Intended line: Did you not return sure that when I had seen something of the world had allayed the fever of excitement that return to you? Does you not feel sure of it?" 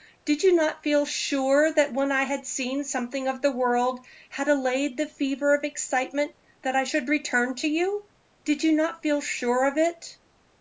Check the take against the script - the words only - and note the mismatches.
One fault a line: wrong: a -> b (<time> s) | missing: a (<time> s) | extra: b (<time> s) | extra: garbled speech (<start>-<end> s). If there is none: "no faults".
wrong: return -> feel (0.8 s)
extra: I should (6.7 s)
wrong: Does -> Did (8.4 s)